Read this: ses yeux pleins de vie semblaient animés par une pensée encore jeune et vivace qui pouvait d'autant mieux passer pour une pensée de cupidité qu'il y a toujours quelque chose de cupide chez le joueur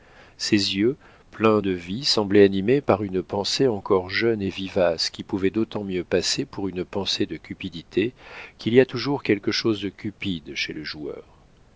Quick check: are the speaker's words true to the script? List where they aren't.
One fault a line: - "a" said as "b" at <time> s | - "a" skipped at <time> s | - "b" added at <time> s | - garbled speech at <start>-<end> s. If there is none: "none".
none